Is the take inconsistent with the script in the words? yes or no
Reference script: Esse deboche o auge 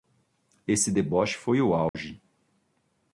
yes